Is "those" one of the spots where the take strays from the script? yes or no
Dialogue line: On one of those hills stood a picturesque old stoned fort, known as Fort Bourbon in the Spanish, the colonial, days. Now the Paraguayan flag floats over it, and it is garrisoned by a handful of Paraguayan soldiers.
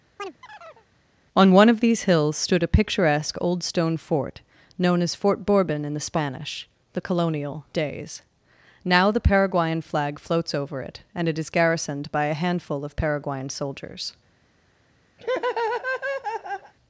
yes